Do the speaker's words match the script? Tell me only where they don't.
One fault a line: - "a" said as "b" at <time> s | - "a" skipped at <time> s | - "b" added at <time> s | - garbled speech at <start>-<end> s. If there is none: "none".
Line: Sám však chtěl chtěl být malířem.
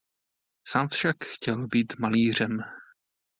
- "chtěl" skipped at 1.7 s